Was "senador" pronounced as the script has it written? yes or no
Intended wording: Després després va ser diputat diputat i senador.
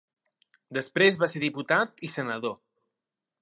yes